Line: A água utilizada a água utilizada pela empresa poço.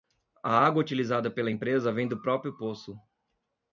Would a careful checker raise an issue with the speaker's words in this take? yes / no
yes